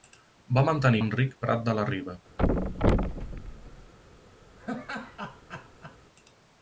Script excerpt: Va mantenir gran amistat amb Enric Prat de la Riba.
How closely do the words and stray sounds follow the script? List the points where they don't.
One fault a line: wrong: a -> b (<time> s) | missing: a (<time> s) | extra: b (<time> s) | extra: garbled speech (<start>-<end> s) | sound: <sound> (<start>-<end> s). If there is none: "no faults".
missing: gran amistat amb (1.0 s)
sound: thud (2.4-3.9 s)
sound: laugh (4.6-6.0 s)